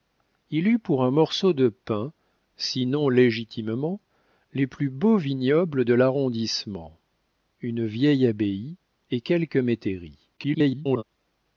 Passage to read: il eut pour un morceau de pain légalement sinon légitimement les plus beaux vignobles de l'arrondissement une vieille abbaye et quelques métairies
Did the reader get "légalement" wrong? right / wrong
wrong